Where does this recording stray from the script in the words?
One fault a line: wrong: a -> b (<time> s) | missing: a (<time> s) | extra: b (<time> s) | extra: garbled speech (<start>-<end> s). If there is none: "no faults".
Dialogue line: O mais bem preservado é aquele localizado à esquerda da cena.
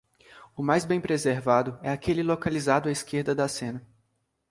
no faults